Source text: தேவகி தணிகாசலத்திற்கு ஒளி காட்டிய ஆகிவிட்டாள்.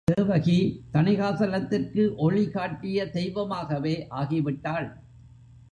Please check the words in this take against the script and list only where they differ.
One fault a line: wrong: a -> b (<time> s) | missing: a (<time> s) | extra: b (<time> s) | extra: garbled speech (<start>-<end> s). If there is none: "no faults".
extra: தெய்வமாகவே (3.1 s)